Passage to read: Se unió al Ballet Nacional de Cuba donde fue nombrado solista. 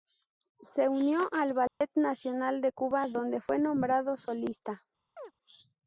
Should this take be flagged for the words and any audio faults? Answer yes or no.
yes